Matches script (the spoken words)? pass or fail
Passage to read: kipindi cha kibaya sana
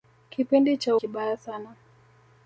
pass